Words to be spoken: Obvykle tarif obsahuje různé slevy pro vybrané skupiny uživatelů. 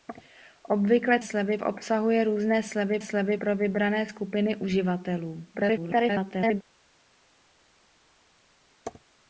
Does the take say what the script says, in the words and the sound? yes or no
no